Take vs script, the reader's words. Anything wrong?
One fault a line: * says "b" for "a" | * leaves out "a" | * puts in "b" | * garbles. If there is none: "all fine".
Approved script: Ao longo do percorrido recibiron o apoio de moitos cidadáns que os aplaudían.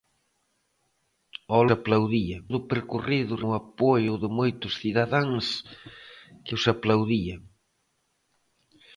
* says "aplaudían" for "longo"
* leaves out "recibiron"